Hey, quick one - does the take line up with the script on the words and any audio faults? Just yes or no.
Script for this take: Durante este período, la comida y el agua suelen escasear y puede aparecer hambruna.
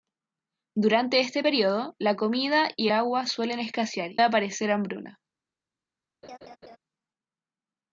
no